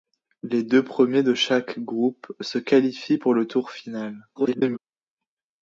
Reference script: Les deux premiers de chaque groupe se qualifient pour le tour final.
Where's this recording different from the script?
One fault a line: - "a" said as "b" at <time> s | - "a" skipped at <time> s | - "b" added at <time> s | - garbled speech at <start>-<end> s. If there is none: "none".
- garbled speech at 4.3-4.8 s